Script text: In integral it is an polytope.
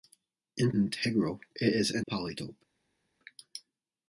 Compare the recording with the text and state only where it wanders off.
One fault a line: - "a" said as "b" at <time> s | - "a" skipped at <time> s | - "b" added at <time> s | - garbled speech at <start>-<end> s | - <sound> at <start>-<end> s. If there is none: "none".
none